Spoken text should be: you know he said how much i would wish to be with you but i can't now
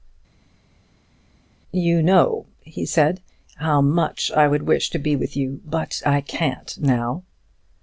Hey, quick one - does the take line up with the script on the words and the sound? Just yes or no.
yes